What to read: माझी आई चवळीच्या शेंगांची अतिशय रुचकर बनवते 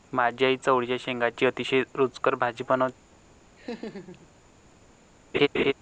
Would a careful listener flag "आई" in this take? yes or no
no